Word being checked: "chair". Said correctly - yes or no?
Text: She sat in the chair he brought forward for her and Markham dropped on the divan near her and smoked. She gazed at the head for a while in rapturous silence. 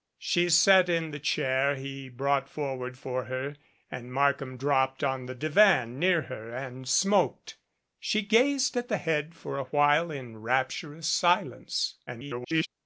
yes